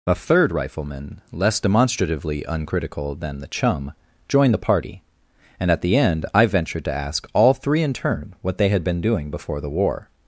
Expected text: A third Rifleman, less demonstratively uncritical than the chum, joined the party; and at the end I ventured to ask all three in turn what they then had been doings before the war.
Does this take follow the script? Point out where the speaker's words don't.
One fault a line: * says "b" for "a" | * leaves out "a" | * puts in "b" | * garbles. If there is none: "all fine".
* leaves out "then"
* says "doing" for "doings"